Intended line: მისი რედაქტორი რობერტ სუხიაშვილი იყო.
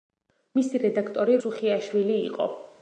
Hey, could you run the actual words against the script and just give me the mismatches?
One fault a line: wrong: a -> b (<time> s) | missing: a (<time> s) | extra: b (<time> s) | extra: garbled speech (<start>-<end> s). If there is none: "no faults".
missing: რობერტ (1.4 s)